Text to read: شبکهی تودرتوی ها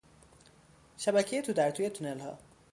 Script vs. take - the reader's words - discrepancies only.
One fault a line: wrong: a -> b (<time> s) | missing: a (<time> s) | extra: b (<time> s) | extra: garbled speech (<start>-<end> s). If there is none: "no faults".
extra: تونل (1.9 s)